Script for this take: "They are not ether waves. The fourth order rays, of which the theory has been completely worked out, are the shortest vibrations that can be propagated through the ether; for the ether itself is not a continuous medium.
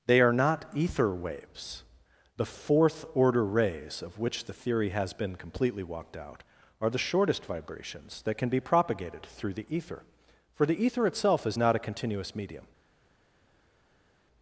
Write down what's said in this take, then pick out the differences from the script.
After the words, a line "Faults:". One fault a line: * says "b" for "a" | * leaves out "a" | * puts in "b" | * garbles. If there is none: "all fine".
"They are not ether waves. The fourth order rays, of which the theory has been completely walked out, are the shortest vibrations that can be propagated through the ether; for the ether itself is not a continuous medium.
Faults:
* says "walked" for "worked"